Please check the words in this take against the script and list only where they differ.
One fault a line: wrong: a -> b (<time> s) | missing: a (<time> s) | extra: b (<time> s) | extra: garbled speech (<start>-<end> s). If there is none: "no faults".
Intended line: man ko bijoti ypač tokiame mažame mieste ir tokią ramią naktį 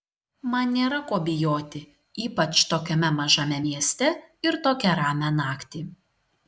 extra: nėra (0.8 s)